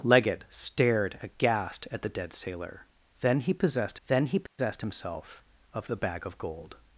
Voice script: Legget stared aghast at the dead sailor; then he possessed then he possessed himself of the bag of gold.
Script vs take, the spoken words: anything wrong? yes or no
no